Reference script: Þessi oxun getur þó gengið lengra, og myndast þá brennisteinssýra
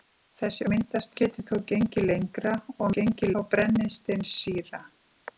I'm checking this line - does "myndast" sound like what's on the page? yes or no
no